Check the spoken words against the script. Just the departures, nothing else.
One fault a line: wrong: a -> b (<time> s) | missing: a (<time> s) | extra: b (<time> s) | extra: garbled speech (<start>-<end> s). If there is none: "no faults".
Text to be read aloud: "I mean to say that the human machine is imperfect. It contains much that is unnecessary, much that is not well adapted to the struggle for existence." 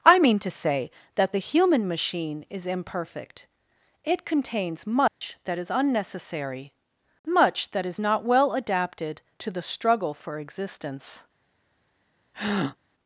no faults